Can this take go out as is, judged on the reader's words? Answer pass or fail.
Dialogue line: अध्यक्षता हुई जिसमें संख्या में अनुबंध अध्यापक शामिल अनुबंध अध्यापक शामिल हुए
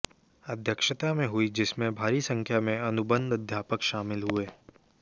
fail